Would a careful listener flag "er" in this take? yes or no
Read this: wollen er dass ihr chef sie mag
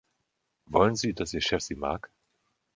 yes